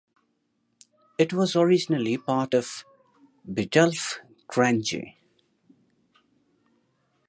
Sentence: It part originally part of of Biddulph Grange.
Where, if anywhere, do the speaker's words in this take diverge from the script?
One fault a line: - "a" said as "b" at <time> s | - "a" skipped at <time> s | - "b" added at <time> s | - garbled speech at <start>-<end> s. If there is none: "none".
- "part" said as "was" at 1.3 s
- "of" skipped at 2.9 s